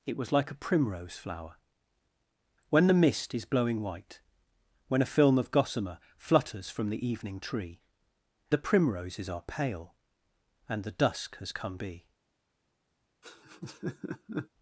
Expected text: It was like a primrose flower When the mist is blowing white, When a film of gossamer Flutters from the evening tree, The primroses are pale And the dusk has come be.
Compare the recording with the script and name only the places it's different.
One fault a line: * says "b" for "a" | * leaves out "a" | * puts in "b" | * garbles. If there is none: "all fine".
all fine